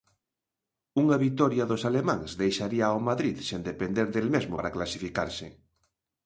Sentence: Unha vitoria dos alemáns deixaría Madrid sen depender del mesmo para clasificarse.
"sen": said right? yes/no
yes